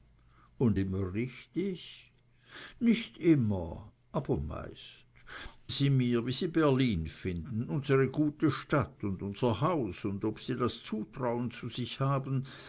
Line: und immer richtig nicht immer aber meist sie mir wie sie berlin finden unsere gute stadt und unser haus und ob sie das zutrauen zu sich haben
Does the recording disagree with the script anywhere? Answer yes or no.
no